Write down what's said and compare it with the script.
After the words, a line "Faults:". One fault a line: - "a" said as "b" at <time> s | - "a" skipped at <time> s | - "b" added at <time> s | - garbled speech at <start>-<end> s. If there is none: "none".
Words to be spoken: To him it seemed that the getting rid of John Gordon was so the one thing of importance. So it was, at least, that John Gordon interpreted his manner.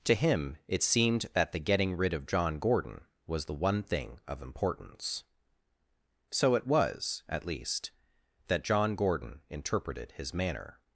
To him it seemed that the getting rid of John Gordon was the one thing of importance. So it was, at least, that John Gordon interpreted his manner.
Faults:
- "so" skipped at 3.5 s